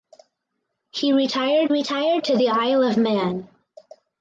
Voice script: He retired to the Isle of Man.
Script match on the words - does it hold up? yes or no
no